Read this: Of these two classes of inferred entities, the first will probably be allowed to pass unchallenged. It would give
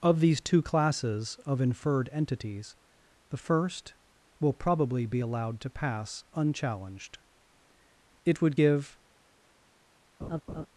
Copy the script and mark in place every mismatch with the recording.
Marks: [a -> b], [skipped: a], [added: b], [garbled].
Of these two classes of inferred entities, the first will probably be allowed to pass unchallenged. It would give